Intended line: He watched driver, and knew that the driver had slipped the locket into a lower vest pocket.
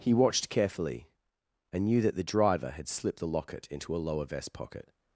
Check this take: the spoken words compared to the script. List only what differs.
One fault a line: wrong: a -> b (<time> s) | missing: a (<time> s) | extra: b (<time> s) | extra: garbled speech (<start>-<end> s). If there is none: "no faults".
wrong: driver -> carefully (0.5 s)